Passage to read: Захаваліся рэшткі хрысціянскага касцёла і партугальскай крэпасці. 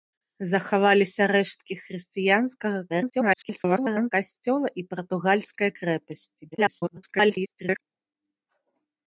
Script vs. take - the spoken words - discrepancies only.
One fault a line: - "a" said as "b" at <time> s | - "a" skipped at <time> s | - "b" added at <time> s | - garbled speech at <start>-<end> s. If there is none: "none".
- garbled speech at 2.9-4.1 s
- garbled speech at 6.5-7.8 s